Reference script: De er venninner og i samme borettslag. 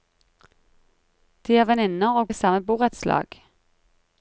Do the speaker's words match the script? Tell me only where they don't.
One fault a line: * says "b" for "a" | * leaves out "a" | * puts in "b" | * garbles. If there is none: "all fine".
all fine